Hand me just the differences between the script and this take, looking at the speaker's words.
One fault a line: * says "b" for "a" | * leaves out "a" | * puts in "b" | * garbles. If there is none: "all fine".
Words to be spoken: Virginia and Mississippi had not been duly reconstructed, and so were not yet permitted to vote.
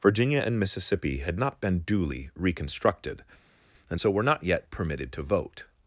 all fine